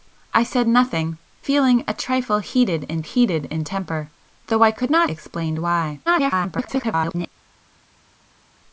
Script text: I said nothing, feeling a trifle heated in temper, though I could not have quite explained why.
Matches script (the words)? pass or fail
fail